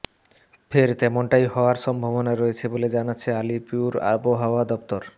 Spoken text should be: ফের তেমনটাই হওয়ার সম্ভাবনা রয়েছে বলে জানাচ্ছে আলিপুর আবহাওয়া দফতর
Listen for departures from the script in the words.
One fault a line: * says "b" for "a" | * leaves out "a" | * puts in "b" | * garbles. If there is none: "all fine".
all fine